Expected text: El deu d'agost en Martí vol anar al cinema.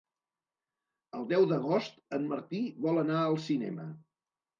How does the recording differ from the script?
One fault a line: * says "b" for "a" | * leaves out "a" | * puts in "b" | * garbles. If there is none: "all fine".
all fine